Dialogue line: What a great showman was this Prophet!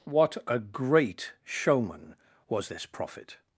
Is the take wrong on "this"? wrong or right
right